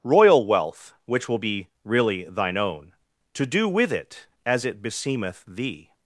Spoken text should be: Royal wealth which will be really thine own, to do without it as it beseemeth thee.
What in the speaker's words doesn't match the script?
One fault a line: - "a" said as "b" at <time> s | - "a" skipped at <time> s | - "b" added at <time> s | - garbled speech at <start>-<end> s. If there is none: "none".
- "without" said as "with" at 3.7 s